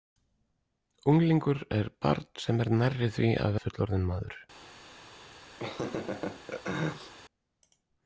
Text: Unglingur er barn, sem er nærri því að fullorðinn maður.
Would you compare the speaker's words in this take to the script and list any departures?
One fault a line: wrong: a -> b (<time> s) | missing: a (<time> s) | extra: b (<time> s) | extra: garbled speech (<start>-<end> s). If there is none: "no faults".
no faults